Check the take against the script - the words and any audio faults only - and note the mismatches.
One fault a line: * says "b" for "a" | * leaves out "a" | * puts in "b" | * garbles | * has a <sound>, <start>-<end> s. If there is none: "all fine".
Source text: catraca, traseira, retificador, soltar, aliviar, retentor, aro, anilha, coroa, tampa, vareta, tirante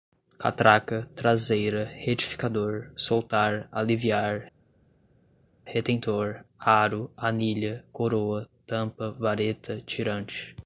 all fine